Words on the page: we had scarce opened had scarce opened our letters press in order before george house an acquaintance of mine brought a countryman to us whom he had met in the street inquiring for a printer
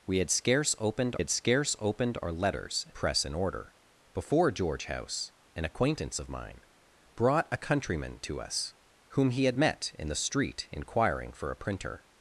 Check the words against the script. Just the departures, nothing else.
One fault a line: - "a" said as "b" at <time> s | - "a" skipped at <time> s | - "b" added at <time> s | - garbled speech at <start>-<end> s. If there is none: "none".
none